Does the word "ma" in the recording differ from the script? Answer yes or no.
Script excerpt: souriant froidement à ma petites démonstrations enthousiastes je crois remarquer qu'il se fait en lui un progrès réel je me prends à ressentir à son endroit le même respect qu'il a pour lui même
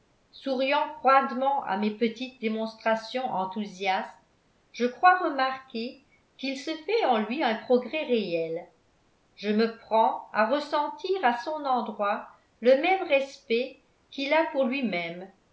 yes